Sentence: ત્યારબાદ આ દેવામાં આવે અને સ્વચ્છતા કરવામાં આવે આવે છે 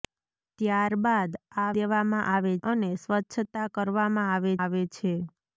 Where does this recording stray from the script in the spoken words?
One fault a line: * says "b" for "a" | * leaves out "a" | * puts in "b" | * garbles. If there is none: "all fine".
all fine